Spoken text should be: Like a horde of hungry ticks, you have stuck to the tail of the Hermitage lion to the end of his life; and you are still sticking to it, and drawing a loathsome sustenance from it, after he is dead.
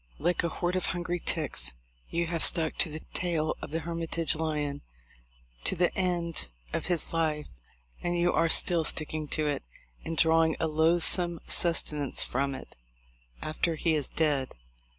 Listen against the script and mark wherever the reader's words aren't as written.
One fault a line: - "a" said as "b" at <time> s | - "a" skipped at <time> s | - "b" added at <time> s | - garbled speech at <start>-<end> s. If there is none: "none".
none